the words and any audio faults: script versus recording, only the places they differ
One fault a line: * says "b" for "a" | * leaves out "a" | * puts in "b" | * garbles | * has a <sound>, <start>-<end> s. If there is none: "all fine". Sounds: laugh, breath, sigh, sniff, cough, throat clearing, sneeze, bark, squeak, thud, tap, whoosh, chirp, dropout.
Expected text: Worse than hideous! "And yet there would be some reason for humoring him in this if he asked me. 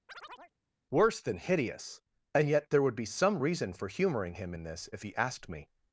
* has a chirp, 0.1-0.5 s